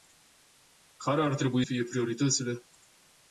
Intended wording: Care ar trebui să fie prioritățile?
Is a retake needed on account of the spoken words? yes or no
yes